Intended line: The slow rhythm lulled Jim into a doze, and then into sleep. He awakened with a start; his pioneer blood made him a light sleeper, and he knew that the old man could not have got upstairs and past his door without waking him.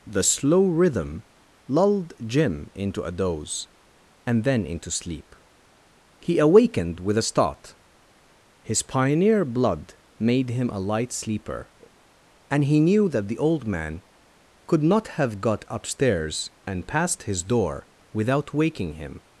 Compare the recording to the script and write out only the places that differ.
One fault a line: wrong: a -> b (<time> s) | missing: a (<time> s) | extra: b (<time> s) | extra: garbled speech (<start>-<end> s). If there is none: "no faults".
no faults